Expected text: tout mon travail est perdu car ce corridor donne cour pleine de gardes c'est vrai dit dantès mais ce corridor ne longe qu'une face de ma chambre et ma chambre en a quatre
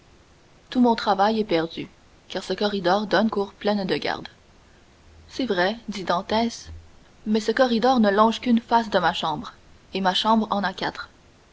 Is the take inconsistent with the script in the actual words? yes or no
no